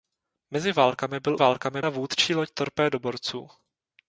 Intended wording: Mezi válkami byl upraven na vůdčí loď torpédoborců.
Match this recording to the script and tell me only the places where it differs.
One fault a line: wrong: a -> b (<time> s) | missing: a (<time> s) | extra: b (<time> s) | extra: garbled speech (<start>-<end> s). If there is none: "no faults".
wrong: upraven -> válkami (1.3 s)